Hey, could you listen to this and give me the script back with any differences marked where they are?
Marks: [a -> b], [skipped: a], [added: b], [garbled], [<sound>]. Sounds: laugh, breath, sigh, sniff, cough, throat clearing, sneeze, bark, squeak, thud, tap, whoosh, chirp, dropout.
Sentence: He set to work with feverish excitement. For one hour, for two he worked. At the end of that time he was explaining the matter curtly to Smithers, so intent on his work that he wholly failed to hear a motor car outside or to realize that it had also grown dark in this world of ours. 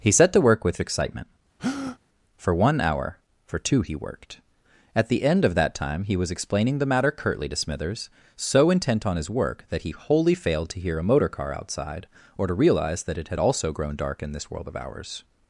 He set to work with [skipped: feverish] excitement. [breath] For one hour, for two he worked. At the end of that time he was explaining the matter curtly to Smithers, so intent on his work that he wholly failed to hear a motor car outside or to realize that it had also grown dark in this world of ours.